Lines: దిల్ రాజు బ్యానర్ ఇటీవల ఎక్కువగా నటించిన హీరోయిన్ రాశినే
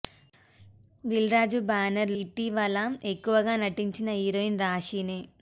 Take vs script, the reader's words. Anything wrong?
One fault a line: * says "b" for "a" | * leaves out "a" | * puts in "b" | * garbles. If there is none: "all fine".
all fine